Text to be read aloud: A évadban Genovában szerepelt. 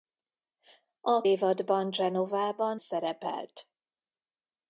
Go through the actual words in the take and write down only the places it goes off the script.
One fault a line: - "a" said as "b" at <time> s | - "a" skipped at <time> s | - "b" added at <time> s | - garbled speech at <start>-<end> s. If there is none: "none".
none